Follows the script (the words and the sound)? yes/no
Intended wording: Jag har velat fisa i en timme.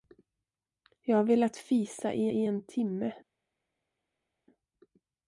no